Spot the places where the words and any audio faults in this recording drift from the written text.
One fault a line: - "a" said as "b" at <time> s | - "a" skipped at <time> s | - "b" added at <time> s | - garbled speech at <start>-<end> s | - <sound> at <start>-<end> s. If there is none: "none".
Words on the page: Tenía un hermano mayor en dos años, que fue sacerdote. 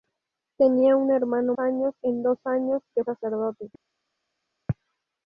- "mayor" said as "años" at 1.6 s
- "fue" skipped at 3.0 s